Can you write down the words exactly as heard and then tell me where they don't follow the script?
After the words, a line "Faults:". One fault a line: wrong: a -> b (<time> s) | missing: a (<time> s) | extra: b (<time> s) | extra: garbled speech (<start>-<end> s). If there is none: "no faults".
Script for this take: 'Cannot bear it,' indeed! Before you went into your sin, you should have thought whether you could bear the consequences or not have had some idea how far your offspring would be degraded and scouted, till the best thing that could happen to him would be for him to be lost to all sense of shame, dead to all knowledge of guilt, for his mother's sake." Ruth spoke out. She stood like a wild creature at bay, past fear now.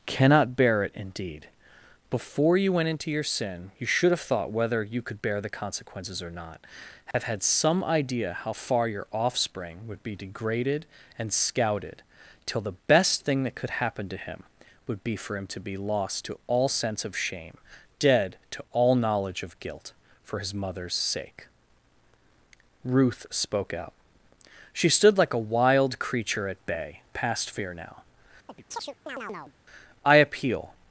'Cannot bear it,' indeed! Before you went into your sin, you should have thought whether you could bear the consequences or not have had some idea how far your offspring would be degraded and scouted, till the best thing that could happen to him would be for him to be lost to all sense of shame, dead to all knowledge of guilt, for his mother's sake." Ruth spoke out. She stood like a wild creature at bay, past fear now. "I appeal
Faults:
extra: I appeal (30.0 s)